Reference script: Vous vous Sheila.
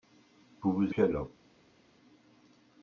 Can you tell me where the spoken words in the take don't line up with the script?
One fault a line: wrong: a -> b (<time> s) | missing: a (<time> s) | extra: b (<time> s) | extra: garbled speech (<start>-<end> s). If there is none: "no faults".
no faults